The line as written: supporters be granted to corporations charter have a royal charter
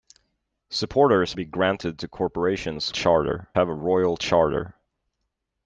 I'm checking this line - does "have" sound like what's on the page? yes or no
yes